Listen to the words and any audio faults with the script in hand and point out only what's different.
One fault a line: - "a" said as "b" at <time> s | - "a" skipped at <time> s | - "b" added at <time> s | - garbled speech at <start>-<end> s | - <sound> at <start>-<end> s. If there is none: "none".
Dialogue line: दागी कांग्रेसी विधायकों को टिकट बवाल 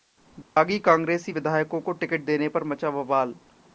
- dropout at 0.4-0.6 s
- "देने पर मचा" added at 2.2 s